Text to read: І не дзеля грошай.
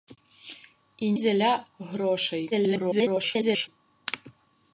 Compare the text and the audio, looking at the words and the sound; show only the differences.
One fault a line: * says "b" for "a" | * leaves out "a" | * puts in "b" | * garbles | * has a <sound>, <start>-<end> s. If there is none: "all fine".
* leaves out "не"
* garbles